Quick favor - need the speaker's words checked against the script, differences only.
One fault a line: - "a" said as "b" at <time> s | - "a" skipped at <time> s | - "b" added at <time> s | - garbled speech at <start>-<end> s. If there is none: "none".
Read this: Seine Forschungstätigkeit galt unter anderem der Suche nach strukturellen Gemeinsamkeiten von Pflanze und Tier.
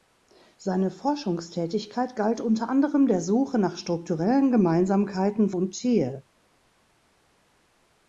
- "von Pflanze" skipped at 5.5 s